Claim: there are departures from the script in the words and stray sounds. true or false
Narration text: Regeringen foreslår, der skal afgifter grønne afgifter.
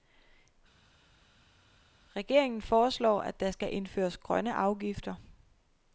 true